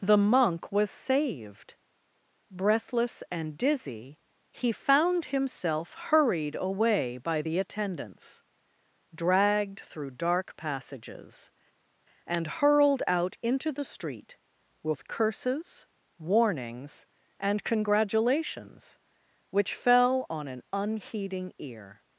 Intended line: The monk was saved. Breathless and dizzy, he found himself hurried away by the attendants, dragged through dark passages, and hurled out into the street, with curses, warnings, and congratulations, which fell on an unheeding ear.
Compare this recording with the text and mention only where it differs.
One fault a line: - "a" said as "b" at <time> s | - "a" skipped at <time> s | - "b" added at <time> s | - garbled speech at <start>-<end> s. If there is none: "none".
none